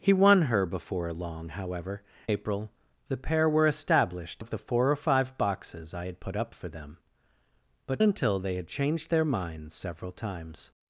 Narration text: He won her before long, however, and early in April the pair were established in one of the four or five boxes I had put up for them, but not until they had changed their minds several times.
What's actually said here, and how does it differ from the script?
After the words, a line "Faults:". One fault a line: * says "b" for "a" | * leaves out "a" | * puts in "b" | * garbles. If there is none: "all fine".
He won her before long, however, April the pair were established of the four or five boxes I had put up for them, but until they had changed their minds several times.
Faults:
* leaves out "and early in"
* leaves out "in one"
* leaves out "not"